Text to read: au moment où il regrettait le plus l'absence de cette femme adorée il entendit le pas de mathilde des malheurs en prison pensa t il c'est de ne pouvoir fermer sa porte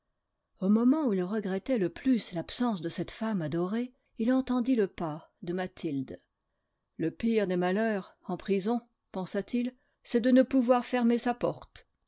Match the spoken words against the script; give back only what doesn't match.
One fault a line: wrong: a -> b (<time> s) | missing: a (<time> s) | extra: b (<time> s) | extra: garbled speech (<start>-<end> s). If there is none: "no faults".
extra: le pire (7.0 s)